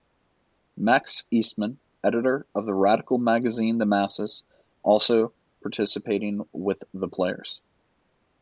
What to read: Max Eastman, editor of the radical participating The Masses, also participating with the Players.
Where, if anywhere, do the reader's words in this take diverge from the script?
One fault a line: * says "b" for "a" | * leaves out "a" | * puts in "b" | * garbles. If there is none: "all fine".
* says "magazine" for "participating"